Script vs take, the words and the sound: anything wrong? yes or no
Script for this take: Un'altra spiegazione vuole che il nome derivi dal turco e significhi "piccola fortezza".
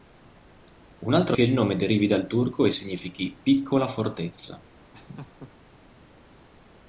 yes